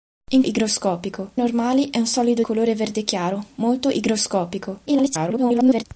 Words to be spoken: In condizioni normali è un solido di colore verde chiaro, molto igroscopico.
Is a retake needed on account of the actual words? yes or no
yes